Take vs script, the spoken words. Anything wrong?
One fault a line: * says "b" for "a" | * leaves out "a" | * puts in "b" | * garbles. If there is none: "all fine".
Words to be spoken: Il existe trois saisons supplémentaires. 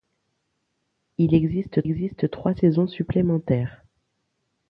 * puts in "existe"